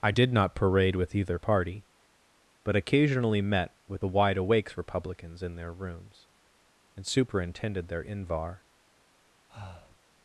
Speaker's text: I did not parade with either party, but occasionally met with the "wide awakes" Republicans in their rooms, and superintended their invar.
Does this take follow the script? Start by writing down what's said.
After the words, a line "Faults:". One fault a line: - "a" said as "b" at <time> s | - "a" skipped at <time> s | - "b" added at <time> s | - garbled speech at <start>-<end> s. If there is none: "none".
I did not parade with either party, but occasionally met with the "wide awakes" Republicans in their rooms, and superintended their invar.
Faults:
none